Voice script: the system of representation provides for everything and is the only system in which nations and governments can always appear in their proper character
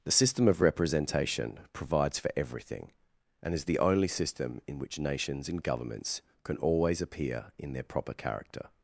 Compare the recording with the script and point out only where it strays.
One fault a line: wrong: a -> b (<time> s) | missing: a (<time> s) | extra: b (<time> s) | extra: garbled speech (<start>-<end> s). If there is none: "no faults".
no faults